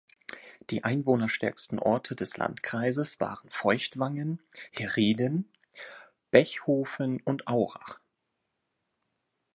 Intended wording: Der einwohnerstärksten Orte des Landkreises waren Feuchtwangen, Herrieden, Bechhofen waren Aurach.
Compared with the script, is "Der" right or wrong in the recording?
wrong